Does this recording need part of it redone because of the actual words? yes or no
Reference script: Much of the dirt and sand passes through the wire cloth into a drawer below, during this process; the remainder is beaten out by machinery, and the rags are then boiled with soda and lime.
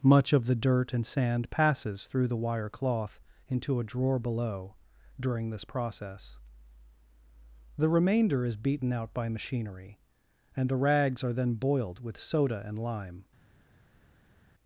no